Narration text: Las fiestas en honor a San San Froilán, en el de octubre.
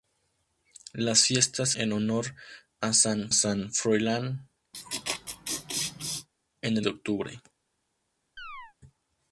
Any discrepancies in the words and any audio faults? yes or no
yes